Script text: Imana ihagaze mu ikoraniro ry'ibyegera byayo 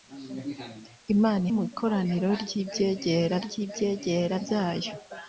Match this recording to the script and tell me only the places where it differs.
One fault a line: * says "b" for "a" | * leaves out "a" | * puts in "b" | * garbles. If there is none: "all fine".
* leaves out "ihagaze"
* puts in "ry'ibyegera"